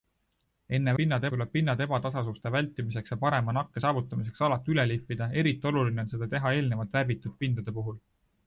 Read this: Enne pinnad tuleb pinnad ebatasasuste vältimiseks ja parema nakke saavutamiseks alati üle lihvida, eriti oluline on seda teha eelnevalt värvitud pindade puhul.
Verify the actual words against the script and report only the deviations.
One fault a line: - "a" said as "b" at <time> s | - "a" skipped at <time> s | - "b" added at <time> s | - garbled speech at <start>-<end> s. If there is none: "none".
none